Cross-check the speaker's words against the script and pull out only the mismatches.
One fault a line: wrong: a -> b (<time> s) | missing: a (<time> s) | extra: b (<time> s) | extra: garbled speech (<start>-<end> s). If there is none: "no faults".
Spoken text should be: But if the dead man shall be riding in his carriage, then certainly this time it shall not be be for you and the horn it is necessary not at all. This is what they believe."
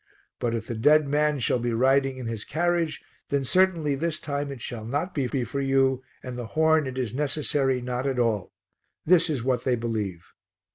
no faults